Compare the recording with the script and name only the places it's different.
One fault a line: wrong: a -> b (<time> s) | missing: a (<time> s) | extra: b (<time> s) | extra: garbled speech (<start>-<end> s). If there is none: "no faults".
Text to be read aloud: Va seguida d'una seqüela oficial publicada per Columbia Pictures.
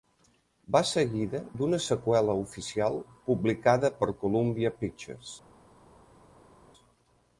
no faults